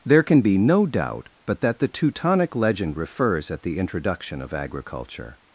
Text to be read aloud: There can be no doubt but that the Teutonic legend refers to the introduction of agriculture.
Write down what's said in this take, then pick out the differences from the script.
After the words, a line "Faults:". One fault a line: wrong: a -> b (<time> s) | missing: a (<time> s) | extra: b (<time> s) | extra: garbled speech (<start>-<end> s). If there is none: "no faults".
There can be no doubt but that the Teutonic legend refers at the introduction of agriculture.
Faults:
wrong: to -> at (3.5 s)